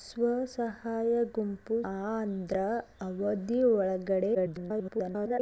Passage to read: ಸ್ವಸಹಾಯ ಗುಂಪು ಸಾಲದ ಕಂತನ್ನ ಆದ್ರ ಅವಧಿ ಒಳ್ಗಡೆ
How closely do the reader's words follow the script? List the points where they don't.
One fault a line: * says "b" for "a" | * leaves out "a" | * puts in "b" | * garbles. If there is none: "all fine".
* leaves out "ಸಾಲದ ಕಂತನ್ನ"
* garbles